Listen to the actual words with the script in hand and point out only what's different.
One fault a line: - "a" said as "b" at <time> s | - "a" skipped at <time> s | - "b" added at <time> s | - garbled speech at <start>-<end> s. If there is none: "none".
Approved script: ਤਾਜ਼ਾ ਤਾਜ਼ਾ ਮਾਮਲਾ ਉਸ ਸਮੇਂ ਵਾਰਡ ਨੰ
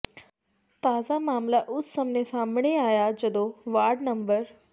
- "ਤਾਜ਼ਾ" skipped at 1.2 s
- "ਸਾਹਮਣੇ ਆਇਆ ਜਦੋਂ" added at 2.2 s